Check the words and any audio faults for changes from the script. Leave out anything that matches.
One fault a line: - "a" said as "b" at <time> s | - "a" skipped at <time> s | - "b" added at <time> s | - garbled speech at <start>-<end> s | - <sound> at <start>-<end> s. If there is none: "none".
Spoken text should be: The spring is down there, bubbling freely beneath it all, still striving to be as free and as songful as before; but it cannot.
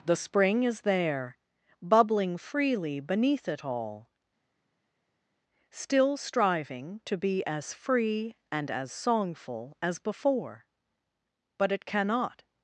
- "down" skipped at 0.8 s